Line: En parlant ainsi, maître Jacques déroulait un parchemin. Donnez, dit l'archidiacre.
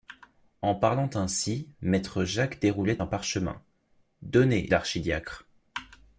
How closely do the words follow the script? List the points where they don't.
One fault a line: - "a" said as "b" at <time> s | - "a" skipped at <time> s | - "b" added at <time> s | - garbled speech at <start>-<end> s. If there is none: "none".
- "dit" skipped at 4.7 s